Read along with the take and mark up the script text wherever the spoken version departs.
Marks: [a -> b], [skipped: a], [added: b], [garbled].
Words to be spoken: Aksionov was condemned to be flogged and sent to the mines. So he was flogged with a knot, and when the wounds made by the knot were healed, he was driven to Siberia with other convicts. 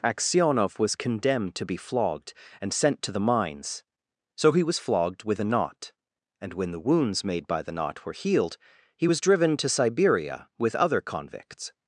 Aksionov was condemned to be flogged and sent to the mines. So he was flogged with a knot, and when the wounds made by the knot were healed, he was driven to Siberia with other convicts.